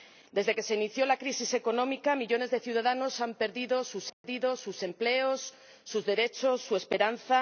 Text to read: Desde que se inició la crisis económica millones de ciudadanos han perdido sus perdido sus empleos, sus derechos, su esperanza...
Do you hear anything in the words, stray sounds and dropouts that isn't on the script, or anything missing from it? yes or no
yes